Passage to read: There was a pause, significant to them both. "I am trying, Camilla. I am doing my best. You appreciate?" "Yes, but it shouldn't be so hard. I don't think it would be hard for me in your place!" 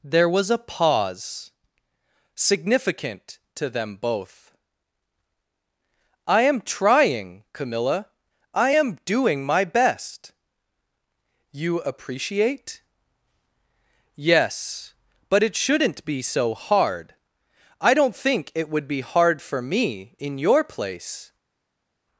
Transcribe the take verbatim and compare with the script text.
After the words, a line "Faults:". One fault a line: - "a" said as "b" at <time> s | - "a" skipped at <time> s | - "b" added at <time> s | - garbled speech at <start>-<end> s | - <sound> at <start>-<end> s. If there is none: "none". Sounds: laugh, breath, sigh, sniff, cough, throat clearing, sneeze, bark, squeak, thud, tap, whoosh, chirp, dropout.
There was a pause, significant to them both. "I am trying, Camilla. I am doing my best. You appreciate?" "Yes, but it shouldn't be so hard. I don't think it would be hard for me in your place!"
Faults:
none